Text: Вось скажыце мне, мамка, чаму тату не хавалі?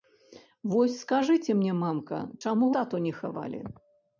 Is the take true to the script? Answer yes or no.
yes